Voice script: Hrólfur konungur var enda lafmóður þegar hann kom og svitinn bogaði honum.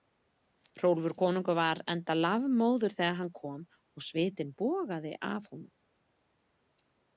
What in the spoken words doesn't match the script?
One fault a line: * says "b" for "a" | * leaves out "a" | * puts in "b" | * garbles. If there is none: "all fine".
* puts in "af"